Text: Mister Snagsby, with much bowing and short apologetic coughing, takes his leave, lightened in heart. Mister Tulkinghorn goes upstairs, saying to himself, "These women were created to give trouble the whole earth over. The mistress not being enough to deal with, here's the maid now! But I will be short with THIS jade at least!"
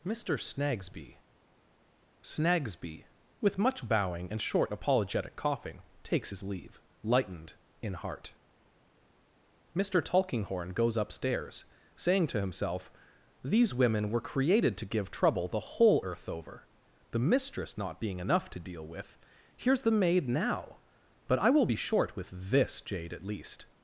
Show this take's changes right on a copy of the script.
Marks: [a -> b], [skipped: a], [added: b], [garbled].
Mister Snagsby, [added: Snagsby] with much bowing and short apologetic coughing, takes his leave, lightened in heart. Mister Tulkinghorn goes upstairs, saying to himself, "These women were created to give trouble the whole earth over. The mistress not being enough to deal with, here's the maid now! But I will be short with THIS jade at least!"